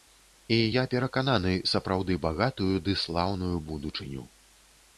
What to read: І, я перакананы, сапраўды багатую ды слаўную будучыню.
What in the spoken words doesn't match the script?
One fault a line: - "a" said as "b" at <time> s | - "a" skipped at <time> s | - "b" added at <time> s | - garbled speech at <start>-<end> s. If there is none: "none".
none